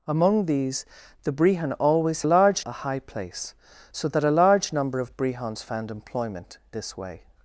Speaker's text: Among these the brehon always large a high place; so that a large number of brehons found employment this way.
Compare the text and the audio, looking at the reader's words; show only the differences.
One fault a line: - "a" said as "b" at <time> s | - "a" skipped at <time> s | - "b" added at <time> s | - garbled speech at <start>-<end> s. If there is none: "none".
none